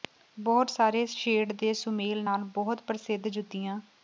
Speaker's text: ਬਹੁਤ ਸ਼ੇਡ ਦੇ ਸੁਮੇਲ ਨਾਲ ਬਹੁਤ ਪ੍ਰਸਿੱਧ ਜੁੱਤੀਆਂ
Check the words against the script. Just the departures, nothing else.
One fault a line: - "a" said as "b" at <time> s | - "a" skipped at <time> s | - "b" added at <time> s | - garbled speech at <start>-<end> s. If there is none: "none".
- "ਸਾਰੇ" added at 0.7 s